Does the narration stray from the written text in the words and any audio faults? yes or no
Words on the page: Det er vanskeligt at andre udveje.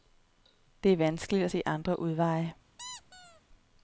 yes